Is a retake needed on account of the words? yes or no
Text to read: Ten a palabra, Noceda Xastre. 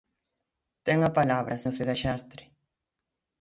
no